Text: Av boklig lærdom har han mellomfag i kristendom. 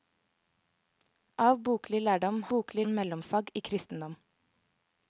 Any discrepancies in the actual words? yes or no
yes